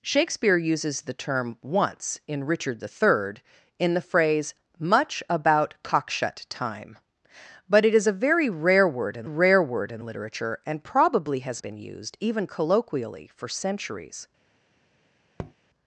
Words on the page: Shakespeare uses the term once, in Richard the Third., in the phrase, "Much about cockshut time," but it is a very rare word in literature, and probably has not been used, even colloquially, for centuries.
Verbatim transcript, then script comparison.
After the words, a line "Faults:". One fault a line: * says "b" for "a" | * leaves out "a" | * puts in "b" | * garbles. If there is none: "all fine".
Shakespeare uses the term once, in Richard the Third., in the phrase, "Much about cockshut time," but it is a very rare word in rare word in literature, and probably has been used, even colloquially, for centuries.
Faults:
* puts in "rare word in"
* leaves out "not"